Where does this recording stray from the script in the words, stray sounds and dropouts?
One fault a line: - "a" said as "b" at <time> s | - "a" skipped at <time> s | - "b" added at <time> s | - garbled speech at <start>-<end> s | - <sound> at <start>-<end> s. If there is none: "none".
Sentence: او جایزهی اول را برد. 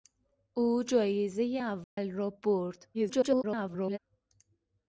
- dropout at 1.8-2.0 s
- garbled speech at 2.9-4.0 s